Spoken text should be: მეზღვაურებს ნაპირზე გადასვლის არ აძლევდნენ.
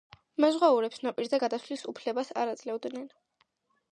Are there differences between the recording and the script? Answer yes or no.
yes